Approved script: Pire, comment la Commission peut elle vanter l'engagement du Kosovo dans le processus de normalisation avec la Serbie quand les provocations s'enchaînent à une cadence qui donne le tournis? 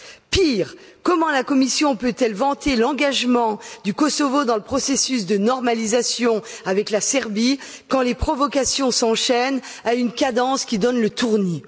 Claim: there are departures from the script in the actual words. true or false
false